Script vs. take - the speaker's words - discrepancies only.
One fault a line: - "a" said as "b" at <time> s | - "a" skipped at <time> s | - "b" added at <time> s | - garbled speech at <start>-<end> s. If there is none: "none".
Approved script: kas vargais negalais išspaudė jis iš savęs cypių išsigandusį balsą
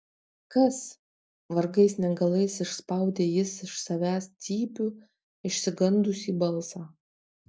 none